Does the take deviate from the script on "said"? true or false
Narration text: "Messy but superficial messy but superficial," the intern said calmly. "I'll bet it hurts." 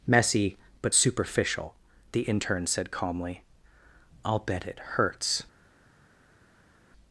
false